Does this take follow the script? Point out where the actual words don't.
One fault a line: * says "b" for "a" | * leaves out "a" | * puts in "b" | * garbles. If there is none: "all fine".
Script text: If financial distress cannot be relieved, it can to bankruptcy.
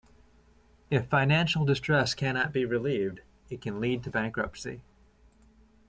* puts in "lead"